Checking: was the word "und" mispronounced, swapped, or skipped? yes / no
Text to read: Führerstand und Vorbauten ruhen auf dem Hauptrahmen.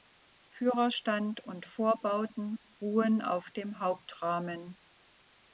no